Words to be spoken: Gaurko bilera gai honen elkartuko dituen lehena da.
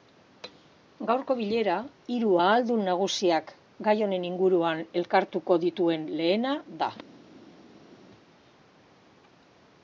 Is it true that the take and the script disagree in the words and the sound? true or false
true